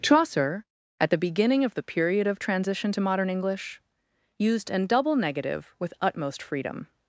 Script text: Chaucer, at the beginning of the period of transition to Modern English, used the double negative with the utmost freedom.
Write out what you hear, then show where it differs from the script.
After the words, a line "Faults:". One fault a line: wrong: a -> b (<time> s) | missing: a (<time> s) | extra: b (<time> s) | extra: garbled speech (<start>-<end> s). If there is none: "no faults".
Chaucer, at the beginning of the period of transition to Modern English, used an double negative with utmost freedom.
Faults:
wrong: the -> an (4.7 s)
missing: the (5.9 s)